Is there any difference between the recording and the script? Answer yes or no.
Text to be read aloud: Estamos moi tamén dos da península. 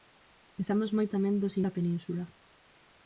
no